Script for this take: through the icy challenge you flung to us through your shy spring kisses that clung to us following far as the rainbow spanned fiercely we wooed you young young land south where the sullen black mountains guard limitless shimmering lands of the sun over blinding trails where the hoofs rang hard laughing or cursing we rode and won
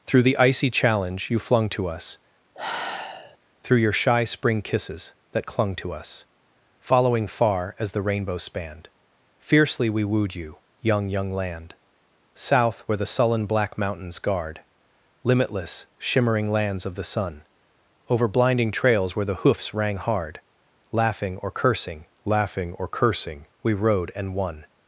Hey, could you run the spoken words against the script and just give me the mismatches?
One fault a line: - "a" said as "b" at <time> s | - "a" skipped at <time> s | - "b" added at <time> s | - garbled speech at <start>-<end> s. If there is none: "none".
- "laughing or cursing" added at 22.2 s